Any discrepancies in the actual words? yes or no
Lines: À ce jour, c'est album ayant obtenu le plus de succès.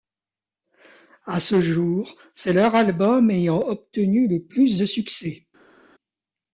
yes